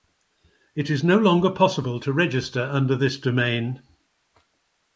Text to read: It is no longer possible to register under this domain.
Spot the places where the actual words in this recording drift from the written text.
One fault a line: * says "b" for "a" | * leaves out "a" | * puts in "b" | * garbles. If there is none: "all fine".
all fine